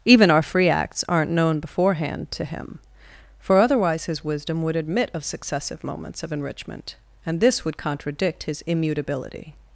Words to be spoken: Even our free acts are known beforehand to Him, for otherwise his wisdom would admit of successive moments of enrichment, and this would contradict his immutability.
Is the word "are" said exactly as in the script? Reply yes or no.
no